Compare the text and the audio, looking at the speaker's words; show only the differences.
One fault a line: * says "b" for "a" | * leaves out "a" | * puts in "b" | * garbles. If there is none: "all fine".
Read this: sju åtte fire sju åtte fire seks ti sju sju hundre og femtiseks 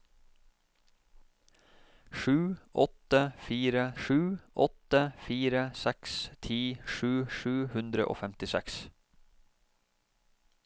all fine